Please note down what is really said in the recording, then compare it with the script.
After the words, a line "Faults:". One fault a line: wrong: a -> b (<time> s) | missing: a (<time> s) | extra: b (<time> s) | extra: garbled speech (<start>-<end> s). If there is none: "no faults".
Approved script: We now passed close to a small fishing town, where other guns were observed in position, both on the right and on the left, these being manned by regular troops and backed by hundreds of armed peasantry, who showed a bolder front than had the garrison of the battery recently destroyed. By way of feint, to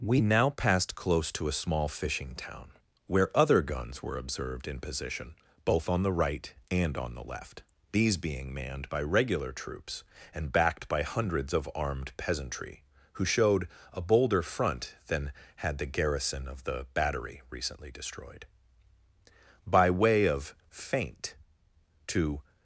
We now passed close to a small fishing town, where other guns were observed in position, both on the right and on the left, these being manned by regular troops and backed by hundreds of armed peasantry, who showed a bolder front than had the garrison of the battery recently destroyed. By way of feint, to
Faults:
no faults